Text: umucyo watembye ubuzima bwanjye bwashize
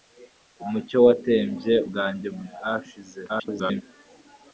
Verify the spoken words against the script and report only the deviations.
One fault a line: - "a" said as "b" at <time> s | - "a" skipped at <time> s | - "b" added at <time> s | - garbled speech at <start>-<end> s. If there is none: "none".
- "ubuzima" skipped at 1.7 s
- garbled speech at 3.3-3.8 s